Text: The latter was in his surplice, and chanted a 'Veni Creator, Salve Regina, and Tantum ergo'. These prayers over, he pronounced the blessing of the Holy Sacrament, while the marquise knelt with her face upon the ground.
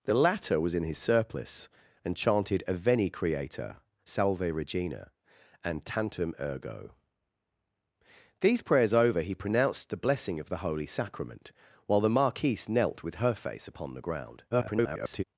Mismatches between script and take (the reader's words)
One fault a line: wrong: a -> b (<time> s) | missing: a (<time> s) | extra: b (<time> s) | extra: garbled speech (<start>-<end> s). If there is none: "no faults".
extra: garbled speech (14.5-15.2 s)